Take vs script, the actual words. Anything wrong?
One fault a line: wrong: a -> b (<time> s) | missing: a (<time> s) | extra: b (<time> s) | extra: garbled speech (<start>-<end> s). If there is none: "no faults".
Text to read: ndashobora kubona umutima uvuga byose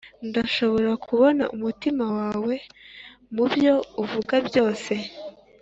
extra: wawe mubyo (2.2 s)